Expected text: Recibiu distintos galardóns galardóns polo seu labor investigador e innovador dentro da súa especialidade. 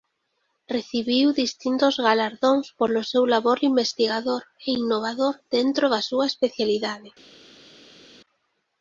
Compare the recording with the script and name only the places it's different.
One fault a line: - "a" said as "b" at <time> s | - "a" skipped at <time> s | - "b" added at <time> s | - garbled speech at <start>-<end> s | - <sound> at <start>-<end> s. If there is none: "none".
- "galardóns" skipped at 2.6 s